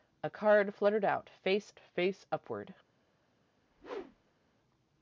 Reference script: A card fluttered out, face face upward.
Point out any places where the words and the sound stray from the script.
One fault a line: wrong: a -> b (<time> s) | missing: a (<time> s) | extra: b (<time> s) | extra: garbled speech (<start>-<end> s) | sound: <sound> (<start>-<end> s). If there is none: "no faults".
sound: whoosh (3.6-4.4 s)